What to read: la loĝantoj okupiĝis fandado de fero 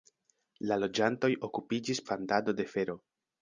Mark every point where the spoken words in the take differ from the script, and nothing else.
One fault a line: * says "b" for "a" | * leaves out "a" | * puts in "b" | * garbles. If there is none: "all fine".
all fine